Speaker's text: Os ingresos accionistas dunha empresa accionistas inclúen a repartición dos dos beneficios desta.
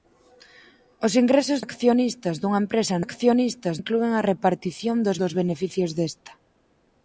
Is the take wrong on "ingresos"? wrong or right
right